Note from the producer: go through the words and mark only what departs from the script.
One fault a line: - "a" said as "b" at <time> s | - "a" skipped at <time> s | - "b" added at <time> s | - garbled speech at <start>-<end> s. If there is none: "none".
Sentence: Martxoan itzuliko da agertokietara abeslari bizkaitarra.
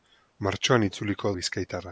- "da agertokietara abeslari" skipped at 1.3 s